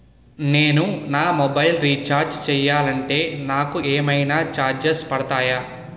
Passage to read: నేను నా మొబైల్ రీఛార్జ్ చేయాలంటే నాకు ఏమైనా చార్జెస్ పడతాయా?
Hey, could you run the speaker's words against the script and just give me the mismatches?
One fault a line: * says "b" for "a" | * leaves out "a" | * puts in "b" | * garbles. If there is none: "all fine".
all fine